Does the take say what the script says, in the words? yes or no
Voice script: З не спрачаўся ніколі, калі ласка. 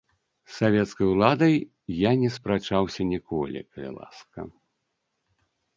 no